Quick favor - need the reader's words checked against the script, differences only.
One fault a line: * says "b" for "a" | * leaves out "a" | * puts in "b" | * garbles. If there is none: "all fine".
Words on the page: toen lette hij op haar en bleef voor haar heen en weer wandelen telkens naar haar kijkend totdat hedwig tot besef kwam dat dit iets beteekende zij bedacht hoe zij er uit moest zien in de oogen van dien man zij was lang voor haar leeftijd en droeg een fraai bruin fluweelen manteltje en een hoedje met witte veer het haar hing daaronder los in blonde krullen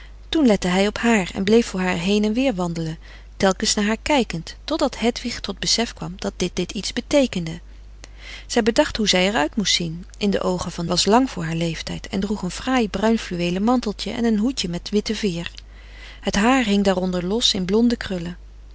* puts in "dit"
* leaves out "dien man zij"